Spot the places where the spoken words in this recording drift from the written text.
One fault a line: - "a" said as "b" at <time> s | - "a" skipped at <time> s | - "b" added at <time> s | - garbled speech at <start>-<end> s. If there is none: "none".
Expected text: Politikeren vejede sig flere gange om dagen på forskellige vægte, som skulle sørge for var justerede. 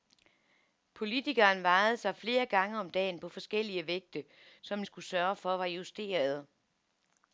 none